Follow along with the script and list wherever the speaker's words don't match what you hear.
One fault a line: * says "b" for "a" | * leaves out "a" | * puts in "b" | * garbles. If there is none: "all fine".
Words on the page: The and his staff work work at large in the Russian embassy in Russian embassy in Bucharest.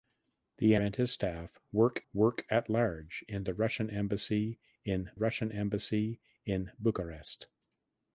all fine